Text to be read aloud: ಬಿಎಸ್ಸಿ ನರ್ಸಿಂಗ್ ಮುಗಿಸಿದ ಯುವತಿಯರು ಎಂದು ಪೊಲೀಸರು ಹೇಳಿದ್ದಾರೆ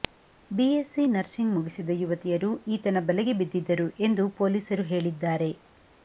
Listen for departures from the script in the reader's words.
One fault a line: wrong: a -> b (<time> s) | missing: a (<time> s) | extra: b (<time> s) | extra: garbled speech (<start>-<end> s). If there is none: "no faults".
extra: ಈತನ ಬಲೆಗೆ ಬಿದ್ದಿದ್ದರು (2.7 s)